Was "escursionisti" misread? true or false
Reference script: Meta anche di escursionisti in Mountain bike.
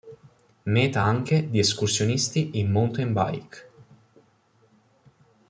false